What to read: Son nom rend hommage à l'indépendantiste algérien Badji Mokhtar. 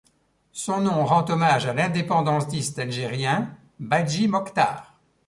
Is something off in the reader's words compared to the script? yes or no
no